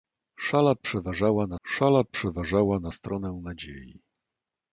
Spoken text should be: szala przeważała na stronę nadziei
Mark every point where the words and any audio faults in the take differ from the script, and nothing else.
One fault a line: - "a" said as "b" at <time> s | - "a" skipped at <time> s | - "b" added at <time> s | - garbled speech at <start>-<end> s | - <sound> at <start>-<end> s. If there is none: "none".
- "szala przeważała na" added at 1.7 s